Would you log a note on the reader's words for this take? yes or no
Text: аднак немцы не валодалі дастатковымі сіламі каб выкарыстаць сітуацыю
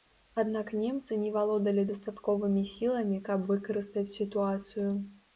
no